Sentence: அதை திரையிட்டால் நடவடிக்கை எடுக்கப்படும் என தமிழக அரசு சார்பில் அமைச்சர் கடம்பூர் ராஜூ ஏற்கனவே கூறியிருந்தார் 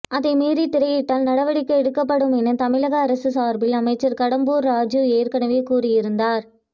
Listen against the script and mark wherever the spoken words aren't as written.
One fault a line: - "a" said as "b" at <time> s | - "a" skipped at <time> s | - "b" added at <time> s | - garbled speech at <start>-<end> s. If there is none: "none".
- "மீறி" added at 0.3 s